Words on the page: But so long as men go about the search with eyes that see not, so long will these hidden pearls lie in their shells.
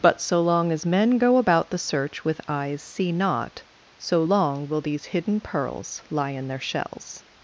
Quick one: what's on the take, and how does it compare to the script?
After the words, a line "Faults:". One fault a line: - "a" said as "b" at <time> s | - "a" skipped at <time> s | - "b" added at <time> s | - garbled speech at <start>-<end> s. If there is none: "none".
But so long as men go about the search with eyes see not, so long will these hidden pearls lie in their shells.
Faults:
- "that" skipped at 2.8 s